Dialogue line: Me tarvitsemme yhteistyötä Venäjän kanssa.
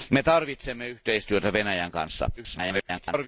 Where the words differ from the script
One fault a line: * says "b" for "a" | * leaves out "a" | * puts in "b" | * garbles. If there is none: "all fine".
* garbles